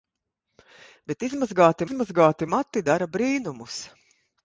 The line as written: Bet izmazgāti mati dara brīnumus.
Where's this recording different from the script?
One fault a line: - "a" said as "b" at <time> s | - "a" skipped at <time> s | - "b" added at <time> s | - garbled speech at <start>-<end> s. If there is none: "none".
- "izmazgāti" added at 1.8 s